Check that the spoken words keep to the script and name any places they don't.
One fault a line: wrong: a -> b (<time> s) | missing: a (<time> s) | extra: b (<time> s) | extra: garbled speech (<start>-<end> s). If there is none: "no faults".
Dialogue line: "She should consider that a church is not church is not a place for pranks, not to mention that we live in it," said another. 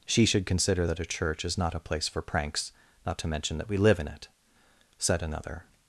missing: church is not (1.7 s)